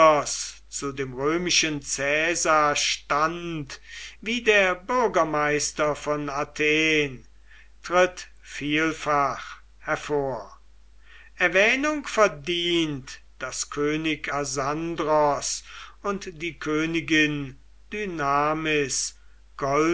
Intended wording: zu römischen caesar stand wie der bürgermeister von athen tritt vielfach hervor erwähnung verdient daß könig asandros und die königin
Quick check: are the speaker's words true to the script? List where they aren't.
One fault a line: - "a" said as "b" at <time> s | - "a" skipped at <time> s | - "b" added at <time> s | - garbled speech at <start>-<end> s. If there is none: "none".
- "dem" added at 0.9 s